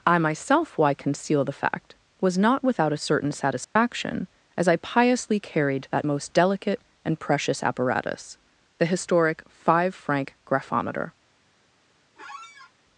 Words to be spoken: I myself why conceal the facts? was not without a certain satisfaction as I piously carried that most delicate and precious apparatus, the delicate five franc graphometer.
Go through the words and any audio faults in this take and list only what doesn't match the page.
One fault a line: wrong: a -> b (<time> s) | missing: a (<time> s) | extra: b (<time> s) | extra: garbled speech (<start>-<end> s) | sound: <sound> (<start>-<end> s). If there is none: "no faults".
wrong: facts -> fact (1.5 s)
sound: dropout (3.6-3.8 s)
wrong: delicate -> historic (8.9 s)
sound: squeak (12.2-12.7 s)